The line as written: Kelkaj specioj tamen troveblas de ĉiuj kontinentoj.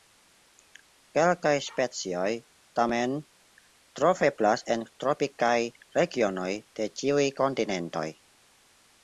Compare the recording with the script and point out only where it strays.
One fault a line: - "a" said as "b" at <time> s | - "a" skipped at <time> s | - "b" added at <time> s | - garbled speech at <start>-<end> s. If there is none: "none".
- "en tropikaj regionoj" added at 4.8 s